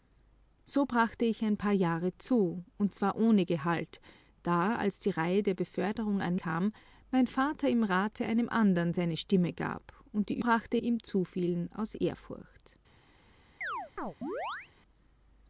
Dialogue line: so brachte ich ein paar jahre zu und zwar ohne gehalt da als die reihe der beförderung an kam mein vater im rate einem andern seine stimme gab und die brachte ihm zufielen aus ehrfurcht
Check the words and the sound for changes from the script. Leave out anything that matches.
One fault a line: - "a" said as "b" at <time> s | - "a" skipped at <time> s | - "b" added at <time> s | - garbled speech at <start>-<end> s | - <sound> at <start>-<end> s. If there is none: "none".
- chirp at 13.6-14.7 s